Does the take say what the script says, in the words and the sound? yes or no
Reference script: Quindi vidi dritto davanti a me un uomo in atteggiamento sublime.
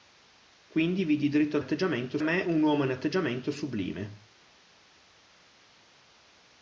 no